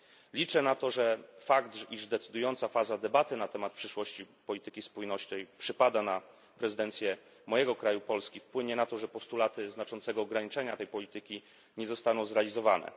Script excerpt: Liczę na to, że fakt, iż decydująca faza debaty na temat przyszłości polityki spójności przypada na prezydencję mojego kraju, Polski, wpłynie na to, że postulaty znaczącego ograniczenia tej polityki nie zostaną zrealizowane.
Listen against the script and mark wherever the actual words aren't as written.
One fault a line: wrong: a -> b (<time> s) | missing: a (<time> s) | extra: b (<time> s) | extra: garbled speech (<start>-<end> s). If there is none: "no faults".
no faults